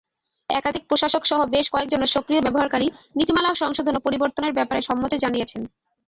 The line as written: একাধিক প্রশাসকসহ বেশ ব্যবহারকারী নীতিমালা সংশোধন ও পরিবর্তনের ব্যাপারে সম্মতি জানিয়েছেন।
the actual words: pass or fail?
fail